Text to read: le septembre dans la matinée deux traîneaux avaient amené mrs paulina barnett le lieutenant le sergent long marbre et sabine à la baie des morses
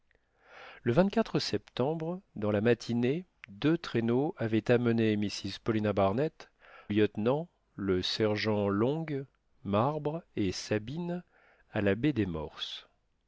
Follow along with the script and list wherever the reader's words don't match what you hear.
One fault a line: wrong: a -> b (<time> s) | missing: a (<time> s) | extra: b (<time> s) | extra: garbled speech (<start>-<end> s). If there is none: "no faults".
missing: le (6.5 s)